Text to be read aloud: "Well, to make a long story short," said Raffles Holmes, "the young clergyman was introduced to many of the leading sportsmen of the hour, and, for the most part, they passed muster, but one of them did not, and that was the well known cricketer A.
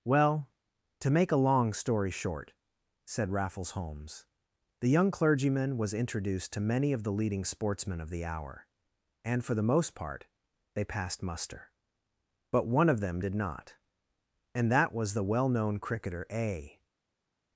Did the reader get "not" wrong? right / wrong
right